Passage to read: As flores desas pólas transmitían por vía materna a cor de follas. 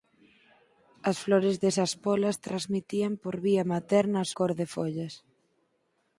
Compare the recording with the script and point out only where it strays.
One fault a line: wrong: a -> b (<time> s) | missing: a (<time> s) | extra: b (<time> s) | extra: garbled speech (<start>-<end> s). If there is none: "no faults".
no faults